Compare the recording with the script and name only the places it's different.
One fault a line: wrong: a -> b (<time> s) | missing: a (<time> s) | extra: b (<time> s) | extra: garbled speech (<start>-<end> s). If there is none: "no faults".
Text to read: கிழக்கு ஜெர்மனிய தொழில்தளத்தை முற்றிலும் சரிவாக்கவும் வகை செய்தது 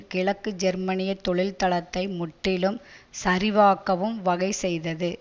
no faults